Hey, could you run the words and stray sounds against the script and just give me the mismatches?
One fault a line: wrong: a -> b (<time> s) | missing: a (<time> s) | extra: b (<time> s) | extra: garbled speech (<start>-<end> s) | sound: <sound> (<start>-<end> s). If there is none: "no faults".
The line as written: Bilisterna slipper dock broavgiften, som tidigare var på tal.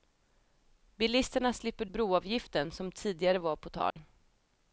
missing: dock (1.9 s)
sound: dropout (3.9-4.0 s)